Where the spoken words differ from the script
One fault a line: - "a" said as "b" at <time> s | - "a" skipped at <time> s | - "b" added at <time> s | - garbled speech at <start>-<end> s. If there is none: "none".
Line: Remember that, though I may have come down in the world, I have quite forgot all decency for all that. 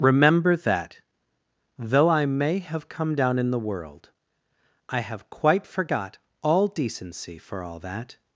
none